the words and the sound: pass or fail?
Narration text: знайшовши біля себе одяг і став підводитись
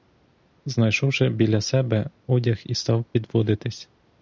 pass